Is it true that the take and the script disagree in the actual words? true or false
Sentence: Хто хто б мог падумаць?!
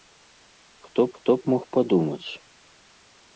false